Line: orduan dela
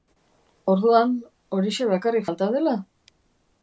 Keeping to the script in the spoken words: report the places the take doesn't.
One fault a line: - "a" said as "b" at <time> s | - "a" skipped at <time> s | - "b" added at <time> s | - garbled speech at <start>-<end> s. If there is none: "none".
- "horixe bakarrik falta" added at 1.6 s